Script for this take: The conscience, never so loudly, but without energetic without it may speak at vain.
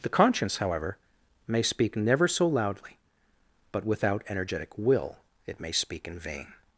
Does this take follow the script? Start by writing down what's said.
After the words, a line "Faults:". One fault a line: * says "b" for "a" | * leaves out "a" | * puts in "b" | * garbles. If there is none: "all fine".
The conscience, however, may speak never so loudly, but without energetic will it may speak in vain.
Faults:
* puts in "however may speak"
* says "will" for "without"
* says "in" for "at"